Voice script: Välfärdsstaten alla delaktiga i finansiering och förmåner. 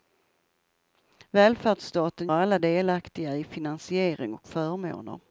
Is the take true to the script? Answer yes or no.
yes